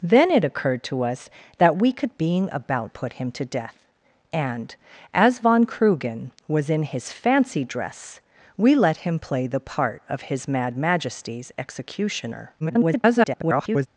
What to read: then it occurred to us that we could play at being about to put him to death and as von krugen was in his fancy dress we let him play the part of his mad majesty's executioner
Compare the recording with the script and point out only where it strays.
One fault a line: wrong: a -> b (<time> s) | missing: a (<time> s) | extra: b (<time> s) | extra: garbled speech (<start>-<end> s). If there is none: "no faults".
missing: play at (2.2 s)
missing: to (2.9 s)
extra: garbled speech (12.6-13.9 s)